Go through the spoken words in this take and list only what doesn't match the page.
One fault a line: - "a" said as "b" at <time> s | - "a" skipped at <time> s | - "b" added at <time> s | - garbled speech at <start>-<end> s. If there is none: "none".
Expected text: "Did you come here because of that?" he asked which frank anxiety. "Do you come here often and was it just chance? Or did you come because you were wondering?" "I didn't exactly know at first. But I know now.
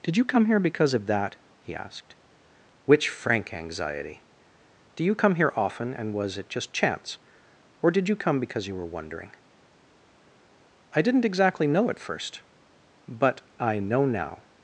none